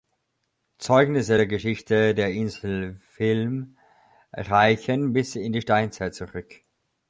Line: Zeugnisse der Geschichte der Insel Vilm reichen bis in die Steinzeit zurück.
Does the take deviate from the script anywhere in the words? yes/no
no